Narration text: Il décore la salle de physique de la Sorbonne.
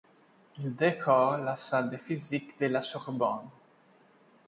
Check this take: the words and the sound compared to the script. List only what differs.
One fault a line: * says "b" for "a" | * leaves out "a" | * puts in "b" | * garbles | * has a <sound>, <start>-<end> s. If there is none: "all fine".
all fine